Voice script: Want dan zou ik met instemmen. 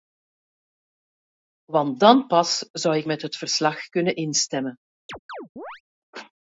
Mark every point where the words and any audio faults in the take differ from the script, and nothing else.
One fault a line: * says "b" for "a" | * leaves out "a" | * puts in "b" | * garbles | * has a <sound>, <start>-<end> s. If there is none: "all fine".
* puts in "pas"
* puts in "het verslag kunnen"
* has a chirp, 5.1-5.8 s